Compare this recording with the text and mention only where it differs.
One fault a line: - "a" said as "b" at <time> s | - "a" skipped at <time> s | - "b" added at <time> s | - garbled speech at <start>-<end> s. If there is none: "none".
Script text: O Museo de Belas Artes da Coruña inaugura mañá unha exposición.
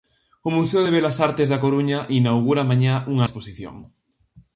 none